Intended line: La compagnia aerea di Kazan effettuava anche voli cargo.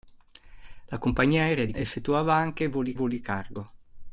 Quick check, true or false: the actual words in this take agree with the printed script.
false